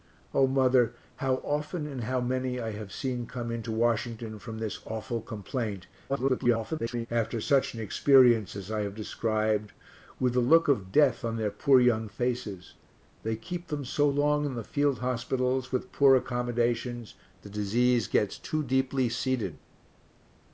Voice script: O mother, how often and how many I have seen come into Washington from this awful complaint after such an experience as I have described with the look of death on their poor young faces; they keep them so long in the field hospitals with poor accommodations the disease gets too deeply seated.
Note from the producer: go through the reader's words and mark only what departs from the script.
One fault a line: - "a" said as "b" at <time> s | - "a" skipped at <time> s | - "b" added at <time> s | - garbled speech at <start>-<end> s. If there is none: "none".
- garbled speech at 6.1-7.1 s